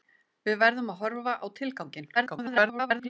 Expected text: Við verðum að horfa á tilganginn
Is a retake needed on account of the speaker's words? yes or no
yes